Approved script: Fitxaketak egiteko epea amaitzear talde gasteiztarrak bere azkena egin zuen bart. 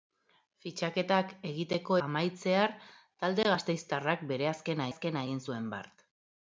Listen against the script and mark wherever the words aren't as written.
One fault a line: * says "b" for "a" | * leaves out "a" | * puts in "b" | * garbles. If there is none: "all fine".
* leaves out "epea"
* puts in "azkena"